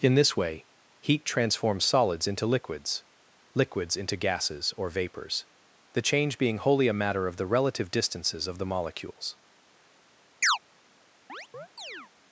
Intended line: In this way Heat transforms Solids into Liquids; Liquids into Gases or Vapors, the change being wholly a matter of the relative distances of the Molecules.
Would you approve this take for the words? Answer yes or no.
yes